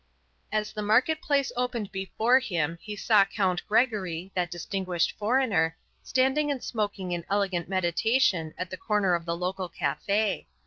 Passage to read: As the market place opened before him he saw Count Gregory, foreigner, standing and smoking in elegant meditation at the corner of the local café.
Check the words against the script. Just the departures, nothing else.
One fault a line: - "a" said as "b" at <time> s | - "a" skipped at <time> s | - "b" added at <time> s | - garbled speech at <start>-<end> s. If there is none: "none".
- "that distinguished" added at 4.3 s